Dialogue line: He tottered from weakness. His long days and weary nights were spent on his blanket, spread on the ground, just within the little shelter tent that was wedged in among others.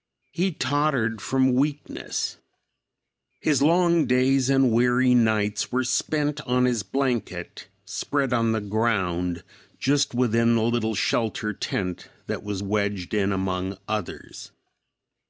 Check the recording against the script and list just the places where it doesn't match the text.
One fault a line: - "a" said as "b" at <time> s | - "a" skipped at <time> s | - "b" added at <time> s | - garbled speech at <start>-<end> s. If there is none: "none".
none